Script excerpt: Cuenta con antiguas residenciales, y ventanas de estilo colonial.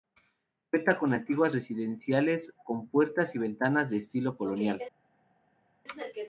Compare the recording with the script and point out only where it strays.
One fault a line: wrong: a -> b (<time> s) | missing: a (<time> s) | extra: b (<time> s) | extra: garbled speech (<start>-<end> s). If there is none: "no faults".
extra: con puertas (2.6 s)